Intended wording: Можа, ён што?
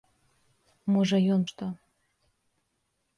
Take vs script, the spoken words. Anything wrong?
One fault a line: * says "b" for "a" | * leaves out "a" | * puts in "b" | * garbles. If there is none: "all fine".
all fine